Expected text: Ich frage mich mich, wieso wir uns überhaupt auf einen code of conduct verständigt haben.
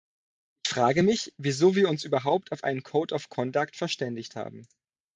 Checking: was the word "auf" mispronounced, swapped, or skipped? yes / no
no